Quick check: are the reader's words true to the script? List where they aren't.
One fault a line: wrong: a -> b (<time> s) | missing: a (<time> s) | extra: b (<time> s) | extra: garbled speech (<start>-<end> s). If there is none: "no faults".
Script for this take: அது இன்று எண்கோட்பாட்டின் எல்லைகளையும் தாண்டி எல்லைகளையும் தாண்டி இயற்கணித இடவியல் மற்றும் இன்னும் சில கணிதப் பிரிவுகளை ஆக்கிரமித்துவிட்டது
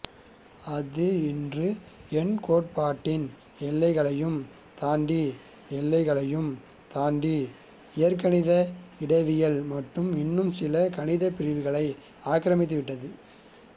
no faults